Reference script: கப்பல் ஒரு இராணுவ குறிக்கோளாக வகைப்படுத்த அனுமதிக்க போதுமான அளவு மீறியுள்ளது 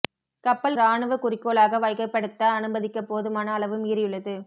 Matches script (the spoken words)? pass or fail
fail